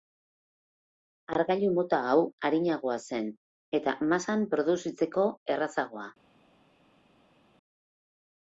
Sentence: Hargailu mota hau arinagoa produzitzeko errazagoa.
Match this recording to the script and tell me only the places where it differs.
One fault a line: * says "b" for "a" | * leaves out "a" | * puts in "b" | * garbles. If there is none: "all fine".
* puts in "zen eta masan"